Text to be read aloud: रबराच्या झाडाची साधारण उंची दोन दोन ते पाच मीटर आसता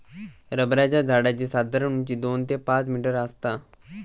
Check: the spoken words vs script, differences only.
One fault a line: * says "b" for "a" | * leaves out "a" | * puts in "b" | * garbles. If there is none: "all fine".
* leaves out "दोन"